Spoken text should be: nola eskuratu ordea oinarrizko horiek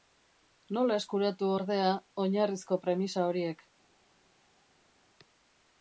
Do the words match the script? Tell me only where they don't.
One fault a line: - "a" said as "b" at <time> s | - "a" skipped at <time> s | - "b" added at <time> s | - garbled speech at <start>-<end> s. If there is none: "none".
- "premisa" added at 2.9 s